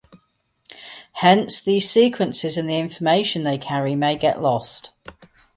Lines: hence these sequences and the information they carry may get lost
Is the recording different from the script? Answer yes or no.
no